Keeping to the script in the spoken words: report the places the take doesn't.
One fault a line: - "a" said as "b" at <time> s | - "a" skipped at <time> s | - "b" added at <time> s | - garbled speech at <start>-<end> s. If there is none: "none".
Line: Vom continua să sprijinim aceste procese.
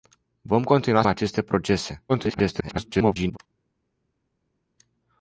- "să sprijinim" skipped at 1.0 s
- garbled speech at 2.1-3.4 s